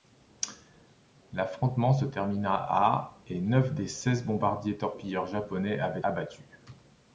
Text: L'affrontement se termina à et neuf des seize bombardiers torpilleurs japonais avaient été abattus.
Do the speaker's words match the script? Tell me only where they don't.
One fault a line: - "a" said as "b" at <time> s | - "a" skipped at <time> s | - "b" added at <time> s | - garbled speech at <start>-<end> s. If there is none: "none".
- "été" skipped at 6.0 s